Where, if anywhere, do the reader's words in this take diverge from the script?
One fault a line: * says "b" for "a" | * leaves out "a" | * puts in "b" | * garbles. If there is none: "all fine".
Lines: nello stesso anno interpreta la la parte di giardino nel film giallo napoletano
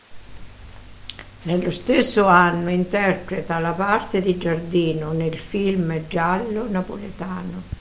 * leaves out "la"